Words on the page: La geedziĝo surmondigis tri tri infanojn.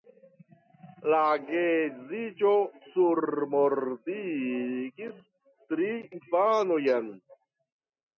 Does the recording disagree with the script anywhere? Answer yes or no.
yes